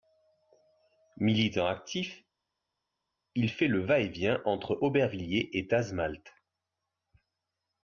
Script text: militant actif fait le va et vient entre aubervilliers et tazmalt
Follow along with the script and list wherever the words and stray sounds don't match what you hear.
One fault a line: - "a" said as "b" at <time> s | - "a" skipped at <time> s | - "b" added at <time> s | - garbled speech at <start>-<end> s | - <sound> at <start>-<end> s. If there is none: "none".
- "il" added at 3.3 s